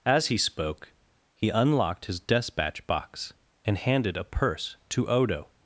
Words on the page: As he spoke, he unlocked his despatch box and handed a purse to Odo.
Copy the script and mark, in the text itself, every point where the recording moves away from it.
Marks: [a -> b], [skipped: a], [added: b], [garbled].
As he spoke, he unlocked his despatch box and handed a purse to Odo.